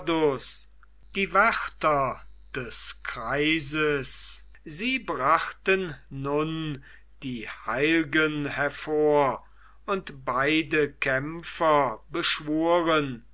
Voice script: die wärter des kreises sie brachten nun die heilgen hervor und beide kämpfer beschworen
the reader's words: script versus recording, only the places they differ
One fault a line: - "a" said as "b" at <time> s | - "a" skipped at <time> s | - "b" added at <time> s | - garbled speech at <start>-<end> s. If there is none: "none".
none